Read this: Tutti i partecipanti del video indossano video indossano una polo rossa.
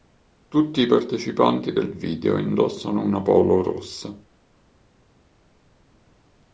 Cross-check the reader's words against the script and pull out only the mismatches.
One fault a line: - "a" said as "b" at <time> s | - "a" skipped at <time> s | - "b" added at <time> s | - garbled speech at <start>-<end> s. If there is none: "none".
- "video indossano" skipped at 3.0 s